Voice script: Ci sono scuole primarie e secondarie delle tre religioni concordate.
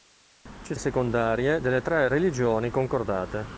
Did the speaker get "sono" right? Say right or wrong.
wrong